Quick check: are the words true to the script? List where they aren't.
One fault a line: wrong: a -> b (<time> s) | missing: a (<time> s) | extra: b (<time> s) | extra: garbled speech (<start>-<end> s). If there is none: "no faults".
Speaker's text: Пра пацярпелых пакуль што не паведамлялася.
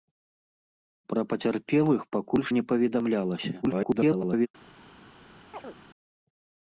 missing: што (2.5 s)
extra: garbled speech (3.6-4.5 s)